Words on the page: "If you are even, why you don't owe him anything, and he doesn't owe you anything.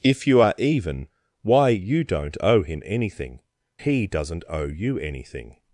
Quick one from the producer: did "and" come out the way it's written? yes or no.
no